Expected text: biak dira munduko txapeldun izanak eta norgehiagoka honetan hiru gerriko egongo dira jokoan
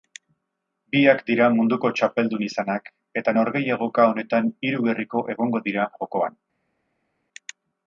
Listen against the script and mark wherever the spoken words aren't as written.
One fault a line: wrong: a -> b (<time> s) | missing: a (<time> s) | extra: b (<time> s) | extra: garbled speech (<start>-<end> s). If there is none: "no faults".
no faults